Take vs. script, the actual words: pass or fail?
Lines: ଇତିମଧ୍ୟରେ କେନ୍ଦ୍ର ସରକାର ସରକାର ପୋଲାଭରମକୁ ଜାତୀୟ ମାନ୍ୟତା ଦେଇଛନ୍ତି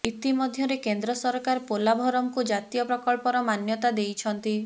fail